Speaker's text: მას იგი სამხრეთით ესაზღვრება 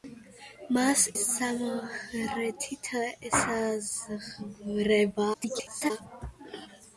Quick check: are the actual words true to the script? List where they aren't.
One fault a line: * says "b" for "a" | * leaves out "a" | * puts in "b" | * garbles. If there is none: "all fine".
* leaves out "იგი"
* garbles